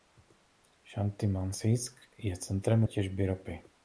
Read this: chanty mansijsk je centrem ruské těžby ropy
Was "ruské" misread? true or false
true